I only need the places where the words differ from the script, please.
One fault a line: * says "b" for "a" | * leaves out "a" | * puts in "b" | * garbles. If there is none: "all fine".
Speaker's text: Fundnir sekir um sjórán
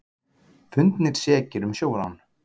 all fine